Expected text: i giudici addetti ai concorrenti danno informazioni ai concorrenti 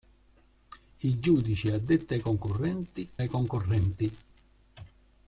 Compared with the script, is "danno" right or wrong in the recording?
wrong